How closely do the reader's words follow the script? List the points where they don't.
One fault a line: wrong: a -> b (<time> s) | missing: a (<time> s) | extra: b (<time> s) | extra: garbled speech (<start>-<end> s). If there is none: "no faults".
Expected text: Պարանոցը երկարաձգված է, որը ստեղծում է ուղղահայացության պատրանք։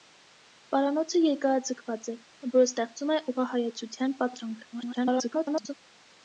extra: garbled speech (4.7-5.7 s)